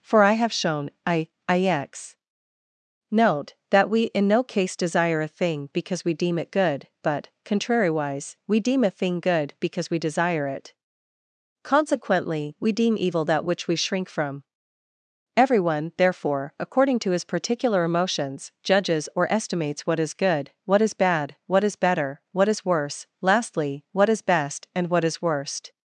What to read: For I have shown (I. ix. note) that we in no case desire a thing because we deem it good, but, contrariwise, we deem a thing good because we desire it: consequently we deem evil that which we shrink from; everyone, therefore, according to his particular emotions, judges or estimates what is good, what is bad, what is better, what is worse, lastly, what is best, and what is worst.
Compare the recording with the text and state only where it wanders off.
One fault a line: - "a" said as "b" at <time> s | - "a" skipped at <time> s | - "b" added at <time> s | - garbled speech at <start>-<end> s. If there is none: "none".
none